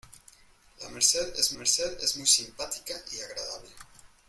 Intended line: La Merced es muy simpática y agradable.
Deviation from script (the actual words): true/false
true